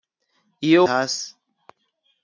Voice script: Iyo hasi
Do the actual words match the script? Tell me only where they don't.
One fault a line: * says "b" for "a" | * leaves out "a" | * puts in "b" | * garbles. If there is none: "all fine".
all fine